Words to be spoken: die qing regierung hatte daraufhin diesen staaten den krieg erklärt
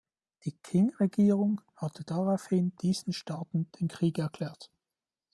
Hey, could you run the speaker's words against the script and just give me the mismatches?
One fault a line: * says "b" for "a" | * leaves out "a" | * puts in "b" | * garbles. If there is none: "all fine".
all fine